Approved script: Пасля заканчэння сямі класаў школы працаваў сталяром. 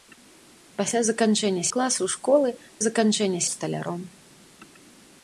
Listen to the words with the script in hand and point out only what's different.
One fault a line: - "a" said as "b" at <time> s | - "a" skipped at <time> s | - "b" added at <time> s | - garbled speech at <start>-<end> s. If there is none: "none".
- "сямі" skipped at 1.6 s
- "працаваў" said as "заканчэння" at 2.9 s